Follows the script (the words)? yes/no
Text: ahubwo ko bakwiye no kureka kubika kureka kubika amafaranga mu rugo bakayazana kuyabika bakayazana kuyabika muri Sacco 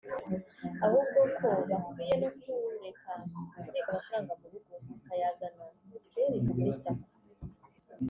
no